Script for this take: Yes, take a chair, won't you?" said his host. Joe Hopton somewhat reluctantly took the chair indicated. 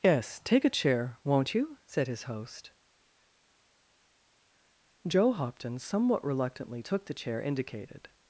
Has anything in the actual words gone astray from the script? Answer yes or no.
no